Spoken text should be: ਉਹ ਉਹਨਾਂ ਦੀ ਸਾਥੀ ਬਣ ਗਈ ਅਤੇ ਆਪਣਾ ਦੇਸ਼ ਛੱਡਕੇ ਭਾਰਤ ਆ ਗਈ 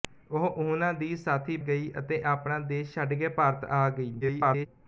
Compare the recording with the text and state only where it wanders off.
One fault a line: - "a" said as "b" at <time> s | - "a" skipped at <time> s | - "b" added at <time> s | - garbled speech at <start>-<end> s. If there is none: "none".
- "ਬਣ" skipped at 1.6 s
- garbled speech at 4.2-4.7 s